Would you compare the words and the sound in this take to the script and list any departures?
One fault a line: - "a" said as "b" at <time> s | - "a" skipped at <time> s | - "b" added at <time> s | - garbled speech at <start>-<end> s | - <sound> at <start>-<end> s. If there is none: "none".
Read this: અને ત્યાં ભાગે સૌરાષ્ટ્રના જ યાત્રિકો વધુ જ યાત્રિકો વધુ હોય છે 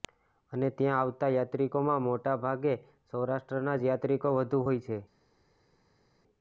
- "ભાગે સૌરાષ્ટ્રના જ યાત્રિકો વધુ" said as "આવતા યાત્રિકોમાં મોટા ભાગે સૌરાષ્ટ્રના" at 1.0 s